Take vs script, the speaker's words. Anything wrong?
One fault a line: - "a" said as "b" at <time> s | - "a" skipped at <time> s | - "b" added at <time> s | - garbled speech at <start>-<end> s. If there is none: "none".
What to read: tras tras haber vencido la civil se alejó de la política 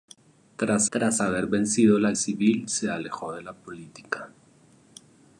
none